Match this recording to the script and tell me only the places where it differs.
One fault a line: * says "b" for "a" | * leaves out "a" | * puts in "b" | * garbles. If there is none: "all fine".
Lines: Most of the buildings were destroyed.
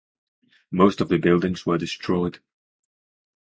all fine